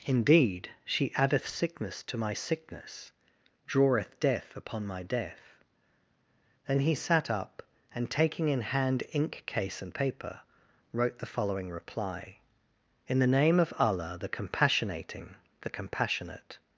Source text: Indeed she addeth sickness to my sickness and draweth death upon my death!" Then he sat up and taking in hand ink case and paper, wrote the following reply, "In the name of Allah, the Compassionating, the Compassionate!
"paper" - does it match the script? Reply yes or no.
yes